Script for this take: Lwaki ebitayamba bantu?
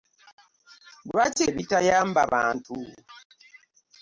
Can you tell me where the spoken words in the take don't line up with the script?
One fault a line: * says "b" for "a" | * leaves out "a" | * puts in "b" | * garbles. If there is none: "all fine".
all fine